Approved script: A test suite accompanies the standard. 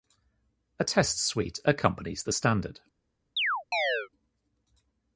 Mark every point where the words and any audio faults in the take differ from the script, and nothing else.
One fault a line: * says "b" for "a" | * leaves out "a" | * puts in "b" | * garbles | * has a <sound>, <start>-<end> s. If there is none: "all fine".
* has a chirp, 3.4-4.1 s